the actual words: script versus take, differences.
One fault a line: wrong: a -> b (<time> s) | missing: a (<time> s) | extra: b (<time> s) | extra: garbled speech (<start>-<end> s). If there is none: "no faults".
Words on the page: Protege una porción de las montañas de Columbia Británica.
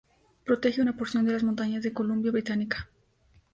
no faults